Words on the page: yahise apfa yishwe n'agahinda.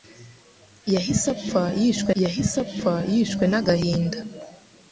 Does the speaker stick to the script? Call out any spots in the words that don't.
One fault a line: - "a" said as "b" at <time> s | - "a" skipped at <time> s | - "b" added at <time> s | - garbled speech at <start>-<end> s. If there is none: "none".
- "yahise apfa yishwe" added at 2.2 s